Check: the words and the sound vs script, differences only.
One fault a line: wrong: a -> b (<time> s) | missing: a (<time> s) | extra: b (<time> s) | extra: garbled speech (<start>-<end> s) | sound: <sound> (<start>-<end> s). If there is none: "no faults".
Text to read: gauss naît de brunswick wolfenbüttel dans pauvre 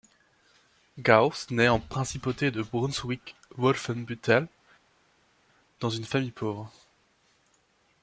extra: en principauté (1.7 s)
extra: une famille (5.9 s)